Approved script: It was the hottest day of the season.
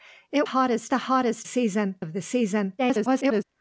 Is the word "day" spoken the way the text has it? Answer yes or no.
no